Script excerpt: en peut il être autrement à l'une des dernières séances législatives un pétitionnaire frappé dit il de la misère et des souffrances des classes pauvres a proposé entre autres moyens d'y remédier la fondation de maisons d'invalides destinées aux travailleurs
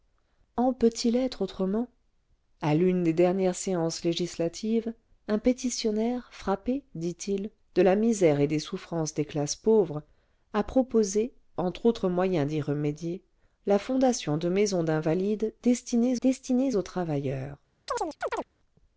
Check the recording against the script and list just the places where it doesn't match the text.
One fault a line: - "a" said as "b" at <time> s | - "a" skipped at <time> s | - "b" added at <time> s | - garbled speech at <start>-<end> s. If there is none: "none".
- "destinées" added at 16.2 s